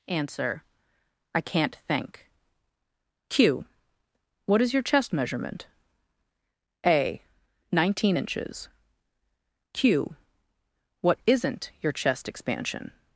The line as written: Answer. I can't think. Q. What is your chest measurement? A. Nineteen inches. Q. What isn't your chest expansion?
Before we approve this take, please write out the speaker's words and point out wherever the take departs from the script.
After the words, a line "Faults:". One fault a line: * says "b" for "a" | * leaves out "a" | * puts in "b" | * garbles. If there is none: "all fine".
Answer. I can't think. Q. What is your chest measurement? A. Nineteen inches. Q. What isn't your chest expansion?
Faults:
all fine